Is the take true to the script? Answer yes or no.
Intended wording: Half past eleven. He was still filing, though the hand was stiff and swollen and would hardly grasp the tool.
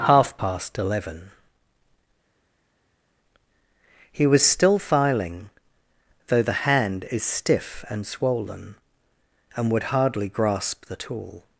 no